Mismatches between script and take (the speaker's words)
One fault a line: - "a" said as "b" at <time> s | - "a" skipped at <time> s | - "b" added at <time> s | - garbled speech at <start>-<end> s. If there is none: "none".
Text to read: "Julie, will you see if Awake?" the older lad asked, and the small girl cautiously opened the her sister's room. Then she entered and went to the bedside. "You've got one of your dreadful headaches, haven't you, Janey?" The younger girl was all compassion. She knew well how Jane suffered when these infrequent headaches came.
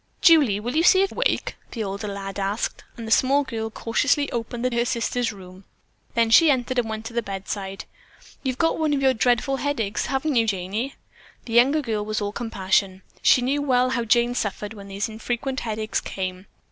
none